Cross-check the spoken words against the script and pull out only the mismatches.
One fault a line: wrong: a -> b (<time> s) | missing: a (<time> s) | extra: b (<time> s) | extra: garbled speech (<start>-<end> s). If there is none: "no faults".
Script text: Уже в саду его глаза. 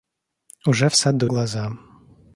missing: его (1.3 s)